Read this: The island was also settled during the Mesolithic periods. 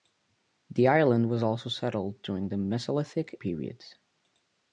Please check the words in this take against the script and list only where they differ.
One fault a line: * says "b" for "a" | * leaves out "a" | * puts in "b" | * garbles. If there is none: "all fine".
all fine